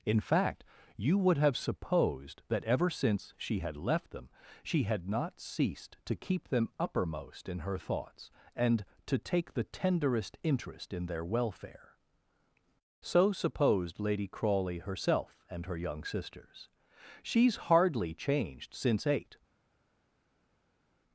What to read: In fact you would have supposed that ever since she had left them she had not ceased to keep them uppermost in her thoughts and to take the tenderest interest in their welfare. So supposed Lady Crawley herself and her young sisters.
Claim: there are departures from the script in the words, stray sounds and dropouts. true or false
true